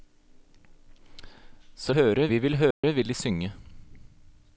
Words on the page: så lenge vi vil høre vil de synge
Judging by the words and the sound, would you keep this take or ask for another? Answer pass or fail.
fail